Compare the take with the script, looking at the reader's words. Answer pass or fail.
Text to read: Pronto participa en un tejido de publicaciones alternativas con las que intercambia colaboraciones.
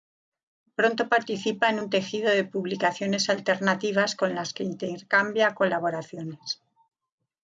pass